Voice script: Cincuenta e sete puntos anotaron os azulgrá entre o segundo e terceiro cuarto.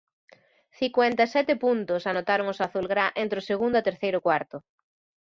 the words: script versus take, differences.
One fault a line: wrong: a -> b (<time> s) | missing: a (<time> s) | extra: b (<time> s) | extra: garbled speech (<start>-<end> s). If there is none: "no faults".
no faults